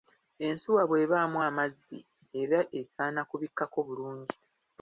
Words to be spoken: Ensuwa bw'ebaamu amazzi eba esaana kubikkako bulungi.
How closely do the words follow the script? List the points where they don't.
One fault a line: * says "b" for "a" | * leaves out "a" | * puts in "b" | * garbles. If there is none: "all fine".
all fine